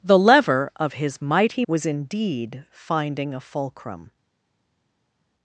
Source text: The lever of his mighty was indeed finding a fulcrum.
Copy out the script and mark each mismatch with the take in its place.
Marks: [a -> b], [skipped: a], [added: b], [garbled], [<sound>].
The lever of his mighty was indeed finding a fulcrum.